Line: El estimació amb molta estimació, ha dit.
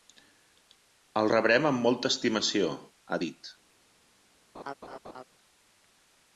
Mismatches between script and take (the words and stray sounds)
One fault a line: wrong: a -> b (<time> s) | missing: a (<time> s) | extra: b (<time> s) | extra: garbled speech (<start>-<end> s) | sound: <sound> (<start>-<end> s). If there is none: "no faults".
wrong: estimació -> rebrem (1.3 s)
sound: laugh (4.5-5.2 s)